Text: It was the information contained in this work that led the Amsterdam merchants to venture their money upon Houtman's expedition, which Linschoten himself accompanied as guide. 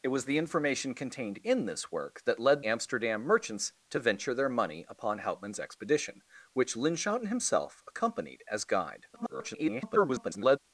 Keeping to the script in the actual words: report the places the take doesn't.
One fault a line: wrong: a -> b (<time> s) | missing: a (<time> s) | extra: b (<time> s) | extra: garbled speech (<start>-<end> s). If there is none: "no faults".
missing: the (2.6 s)
extra: garbled speech (9.1-10.6 s)